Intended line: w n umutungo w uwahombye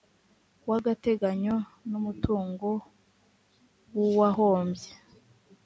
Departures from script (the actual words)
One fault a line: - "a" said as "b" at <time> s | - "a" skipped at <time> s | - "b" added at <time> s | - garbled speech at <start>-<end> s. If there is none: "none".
- "agateganyo" added at 0.8 s